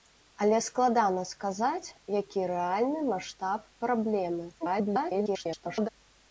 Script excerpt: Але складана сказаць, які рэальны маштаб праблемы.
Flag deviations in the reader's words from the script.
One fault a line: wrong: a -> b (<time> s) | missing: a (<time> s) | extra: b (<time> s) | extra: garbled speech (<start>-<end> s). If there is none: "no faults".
extra: garbled speech (4.6-5.9 s)